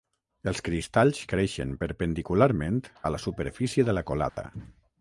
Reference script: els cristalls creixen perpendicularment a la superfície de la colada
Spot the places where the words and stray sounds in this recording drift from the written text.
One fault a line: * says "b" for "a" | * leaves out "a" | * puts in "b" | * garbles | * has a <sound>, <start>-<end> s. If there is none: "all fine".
* has a dropout, 4.3-4.4 s